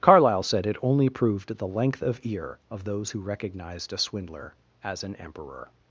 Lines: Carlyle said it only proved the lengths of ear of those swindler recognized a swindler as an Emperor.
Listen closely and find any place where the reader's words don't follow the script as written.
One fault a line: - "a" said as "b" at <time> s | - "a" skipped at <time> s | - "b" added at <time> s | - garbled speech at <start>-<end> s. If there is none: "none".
- "lengths" said as "length" at 1.7 s
- "swindler" said as "who" at 3.1 s